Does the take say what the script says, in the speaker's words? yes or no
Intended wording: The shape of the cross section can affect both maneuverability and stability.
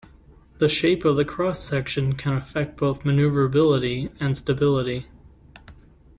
yes